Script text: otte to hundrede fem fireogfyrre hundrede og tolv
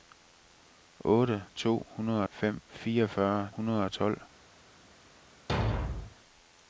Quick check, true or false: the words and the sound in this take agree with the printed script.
false